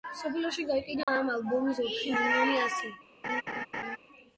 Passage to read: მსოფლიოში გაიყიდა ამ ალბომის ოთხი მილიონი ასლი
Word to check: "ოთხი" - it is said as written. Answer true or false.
true